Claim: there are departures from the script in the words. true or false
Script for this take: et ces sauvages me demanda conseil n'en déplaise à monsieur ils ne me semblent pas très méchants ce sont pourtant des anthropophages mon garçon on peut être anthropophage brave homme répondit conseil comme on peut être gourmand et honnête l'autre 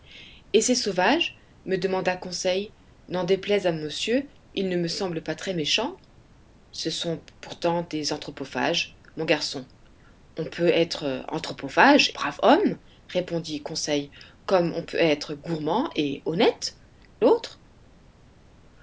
false